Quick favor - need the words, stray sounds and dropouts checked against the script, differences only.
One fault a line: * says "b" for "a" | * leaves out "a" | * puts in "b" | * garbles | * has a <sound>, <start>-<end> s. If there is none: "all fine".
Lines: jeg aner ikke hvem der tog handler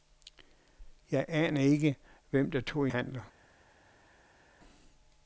all fine